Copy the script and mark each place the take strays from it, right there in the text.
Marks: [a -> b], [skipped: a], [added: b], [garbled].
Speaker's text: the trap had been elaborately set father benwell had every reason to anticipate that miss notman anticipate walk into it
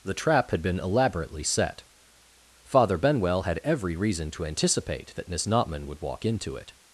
the trap had been elaborately set father benwell had every reason to anticipate that miss notman [anticipate -> would] walk into it